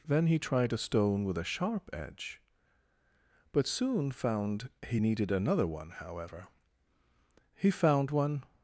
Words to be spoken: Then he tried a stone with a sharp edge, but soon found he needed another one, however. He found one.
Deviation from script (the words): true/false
false